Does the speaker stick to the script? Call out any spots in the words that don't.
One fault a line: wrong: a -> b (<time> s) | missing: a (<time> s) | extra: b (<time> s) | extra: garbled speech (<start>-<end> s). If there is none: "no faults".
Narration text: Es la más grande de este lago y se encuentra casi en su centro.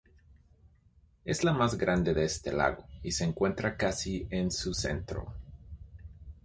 no faults